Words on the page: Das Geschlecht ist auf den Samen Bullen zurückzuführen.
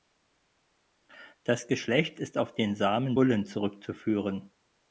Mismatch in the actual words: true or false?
false